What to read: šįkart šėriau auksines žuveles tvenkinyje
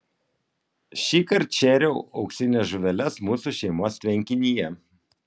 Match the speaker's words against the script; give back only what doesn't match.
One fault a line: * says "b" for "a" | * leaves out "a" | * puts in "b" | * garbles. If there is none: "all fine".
* puts in "mūsų šeimos"